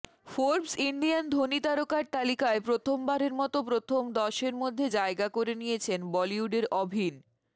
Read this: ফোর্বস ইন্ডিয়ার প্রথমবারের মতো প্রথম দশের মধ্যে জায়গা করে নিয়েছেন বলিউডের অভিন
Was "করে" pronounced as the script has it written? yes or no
yes